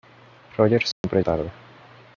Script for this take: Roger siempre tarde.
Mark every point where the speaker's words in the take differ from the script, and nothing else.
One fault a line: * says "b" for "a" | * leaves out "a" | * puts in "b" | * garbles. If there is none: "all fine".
all fine